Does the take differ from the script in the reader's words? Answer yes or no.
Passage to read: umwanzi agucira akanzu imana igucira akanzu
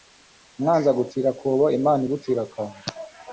yes